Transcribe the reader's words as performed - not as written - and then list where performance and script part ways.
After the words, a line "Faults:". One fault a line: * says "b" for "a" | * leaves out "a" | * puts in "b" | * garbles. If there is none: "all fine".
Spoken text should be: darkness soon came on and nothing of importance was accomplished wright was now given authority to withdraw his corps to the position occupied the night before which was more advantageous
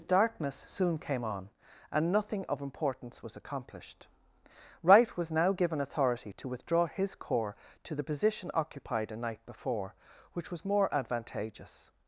darkness soon came on and nothing of importance was accomplished wright was now given authority to withdraw his corps to the position occupied a night before which was more advantageous
Faults:
* says "a" for "the"